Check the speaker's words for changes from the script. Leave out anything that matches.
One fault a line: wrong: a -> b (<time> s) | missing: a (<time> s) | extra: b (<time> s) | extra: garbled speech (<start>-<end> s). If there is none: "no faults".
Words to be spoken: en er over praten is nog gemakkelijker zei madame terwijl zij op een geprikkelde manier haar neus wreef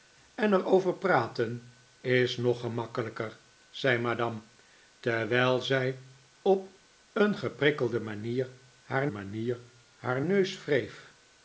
extra: manier haar (9.1 s)